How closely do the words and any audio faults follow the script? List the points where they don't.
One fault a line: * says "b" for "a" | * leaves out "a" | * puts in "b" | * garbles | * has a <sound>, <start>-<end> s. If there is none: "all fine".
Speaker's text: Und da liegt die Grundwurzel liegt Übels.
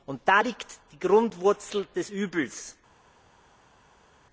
* says "des" for "liegt"